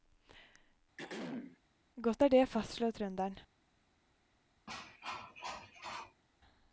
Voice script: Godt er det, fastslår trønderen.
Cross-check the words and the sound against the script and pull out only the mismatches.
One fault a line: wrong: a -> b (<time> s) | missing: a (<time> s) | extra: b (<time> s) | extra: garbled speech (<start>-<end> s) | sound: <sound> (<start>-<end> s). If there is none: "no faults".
sound: throat clearing (1.0-1.6 s)
sound: cough (4.7-6.2 s)